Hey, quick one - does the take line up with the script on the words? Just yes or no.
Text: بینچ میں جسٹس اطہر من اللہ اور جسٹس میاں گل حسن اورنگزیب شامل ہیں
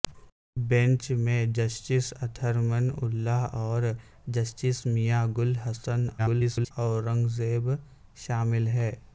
no